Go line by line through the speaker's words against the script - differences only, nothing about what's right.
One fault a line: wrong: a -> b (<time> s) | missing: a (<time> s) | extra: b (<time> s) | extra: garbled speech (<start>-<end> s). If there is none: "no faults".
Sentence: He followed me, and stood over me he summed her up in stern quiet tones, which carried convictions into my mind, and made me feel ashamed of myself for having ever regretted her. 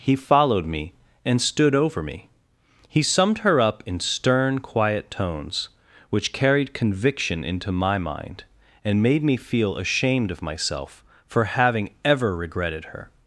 wrong: convictions -> conviction (6.7 s)